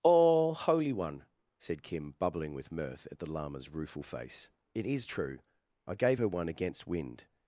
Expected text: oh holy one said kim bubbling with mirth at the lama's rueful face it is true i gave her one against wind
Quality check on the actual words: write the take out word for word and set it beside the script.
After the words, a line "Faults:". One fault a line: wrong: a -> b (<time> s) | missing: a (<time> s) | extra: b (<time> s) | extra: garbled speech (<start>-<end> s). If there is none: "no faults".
oh holy one said kim bubbling with mirth at the lama's rueful face it is true i gave her one against wind
Faults:
no faults